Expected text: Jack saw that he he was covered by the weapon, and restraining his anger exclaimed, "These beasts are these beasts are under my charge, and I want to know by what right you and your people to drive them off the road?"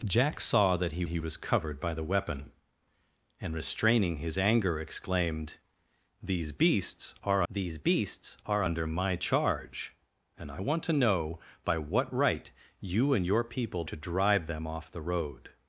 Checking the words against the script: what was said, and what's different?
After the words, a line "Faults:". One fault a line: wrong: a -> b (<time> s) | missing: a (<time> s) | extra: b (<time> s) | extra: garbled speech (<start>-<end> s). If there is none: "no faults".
Jack saw that he he was covered by the weapon, and restraining his anger exclaimed, "These beasts are these beasts are under my charge, and I want to know by what right you and your people to drive them off the road?"
Faults:
no faults